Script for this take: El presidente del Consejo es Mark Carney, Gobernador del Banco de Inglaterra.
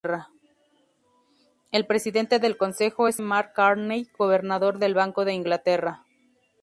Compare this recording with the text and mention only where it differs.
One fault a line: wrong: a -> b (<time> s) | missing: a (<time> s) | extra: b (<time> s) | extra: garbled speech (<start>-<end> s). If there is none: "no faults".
no faults